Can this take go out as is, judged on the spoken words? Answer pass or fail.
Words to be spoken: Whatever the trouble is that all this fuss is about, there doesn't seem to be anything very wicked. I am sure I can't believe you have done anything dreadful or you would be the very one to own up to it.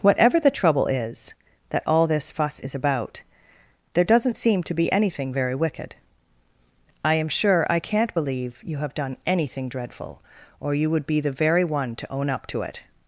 pass